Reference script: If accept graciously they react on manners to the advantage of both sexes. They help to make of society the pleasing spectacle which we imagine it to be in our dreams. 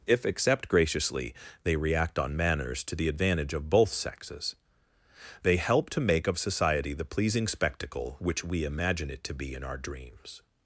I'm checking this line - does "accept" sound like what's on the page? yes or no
yes